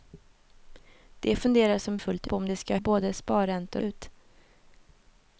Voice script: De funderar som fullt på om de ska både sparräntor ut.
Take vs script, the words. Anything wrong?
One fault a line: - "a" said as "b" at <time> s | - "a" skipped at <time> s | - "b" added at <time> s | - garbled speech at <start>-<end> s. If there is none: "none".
none